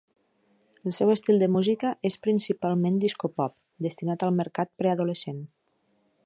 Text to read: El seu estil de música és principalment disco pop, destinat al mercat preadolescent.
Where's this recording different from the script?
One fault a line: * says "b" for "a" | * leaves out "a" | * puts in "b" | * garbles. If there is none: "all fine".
all fine